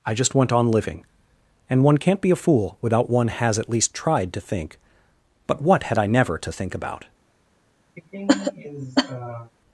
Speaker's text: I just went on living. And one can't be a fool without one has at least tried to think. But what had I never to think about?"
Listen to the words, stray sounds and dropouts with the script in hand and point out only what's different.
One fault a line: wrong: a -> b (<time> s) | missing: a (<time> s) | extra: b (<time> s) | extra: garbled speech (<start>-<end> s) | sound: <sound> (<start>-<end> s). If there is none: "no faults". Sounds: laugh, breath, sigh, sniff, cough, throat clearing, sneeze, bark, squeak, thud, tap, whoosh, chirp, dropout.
sound: cough (8.0-9.5 s)